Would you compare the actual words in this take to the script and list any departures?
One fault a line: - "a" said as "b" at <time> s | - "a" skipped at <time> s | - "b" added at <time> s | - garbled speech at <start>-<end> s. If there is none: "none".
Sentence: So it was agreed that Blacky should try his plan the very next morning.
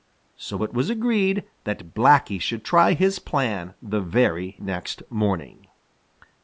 none